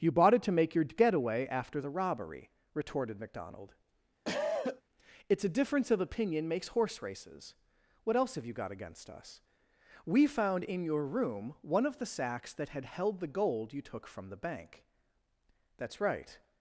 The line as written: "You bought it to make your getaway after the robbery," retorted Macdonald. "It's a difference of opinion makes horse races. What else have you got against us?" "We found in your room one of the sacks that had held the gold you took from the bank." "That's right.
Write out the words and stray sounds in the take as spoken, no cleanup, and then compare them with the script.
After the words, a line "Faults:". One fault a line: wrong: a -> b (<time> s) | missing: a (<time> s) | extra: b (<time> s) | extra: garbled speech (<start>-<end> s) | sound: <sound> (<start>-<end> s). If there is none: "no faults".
"You bought it to make your getaway after the robbery," retorted Macdonald. "It's a difference of opinion makes horse races. What else have you got against us?" "We found in your room one of the sacks that had held the gold you took from the bank." "That's right.
Faults:
sound: cough (4.3-4.8 s)